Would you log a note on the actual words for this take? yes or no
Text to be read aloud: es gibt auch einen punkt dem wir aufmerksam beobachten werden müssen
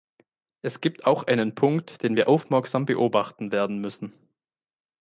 yes